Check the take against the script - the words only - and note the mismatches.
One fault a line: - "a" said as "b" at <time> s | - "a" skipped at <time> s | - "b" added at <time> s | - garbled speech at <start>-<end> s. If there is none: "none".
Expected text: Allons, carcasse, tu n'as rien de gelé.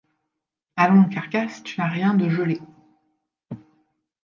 none